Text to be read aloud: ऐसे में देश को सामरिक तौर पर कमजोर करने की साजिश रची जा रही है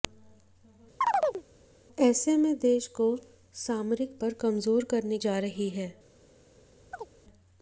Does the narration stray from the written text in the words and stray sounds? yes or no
yes